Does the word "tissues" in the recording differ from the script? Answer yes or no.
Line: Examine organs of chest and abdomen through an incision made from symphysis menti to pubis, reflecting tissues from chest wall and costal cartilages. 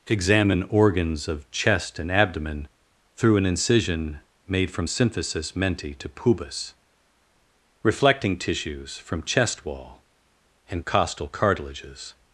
no